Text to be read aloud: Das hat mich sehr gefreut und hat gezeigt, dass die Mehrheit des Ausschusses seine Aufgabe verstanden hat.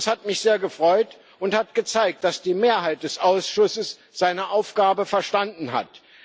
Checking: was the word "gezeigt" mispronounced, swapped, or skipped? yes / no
no